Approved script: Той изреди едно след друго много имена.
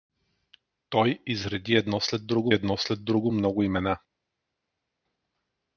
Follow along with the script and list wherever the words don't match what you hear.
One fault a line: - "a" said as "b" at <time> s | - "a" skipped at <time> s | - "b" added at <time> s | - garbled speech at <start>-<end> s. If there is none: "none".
- "едно след друго" added at 2.5 s